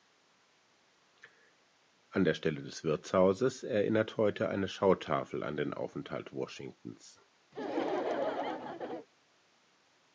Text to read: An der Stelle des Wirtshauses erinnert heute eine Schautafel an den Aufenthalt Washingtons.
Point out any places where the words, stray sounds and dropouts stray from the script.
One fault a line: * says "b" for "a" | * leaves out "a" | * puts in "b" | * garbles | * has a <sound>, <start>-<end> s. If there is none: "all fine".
* has a laugh, 7.5-9.1 s